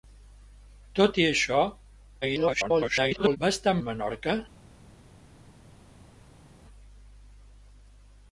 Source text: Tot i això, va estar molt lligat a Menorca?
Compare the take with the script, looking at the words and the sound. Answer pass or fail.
fail